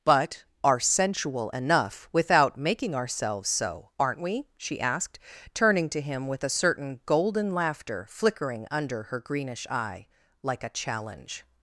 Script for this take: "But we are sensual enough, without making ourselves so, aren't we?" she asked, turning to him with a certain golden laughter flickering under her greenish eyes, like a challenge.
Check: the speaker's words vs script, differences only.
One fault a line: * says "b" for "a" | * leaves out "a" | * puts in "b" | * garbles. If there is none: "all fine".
* leaves out "we"
* says "eye" for "eyes"